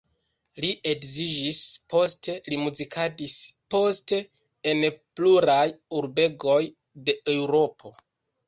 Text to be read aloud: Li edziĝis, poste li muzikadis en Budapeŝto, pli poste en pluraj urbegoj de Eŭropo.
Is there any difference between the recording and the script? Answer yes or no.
yes